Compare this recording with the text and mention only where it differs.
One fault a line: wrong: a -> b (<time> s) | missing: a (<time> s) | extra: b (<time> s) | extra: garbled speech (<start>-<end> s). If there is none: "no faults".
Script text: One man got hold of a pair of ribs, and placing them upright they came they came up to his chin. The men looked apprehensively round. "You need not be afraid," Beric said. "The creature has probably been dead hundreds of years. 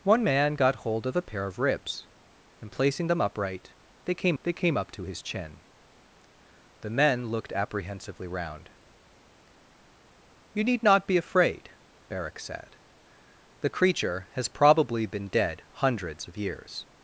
no faults